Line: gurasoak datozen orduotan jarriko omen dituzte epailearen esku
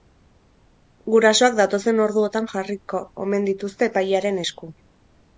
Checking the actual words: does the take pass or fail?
pass